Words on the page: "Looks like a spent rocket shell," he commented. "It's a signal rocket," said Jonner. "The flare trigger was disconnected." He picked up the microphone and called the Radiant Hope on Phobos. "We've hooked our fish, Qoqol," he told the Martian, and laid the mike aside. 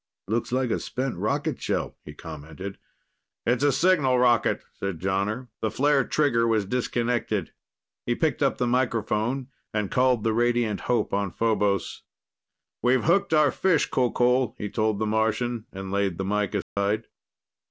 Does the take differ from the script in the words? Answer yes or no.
no